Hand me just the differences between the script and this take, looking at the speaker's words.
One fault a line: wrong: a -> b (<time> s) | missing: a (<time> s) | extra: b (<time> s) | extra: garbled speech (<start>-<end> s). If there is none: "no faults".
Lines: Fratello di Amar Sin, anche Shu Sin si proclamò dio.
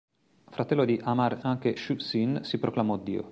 missing: Sin (1.4 s)